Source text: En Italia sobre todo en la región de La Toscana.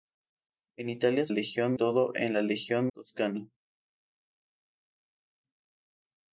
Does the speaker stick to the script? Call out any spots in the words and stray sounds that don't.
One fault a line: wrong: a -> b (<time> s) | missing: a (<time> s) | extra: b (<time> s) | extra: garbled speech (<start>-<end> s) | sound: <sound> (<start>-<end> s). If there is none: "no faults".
wrong: sobre -> región (1.3 s)
missing: de La (2.9 s)